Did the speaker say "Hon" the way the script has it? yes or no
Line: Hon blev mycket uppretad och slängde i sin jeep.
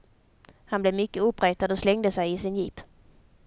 no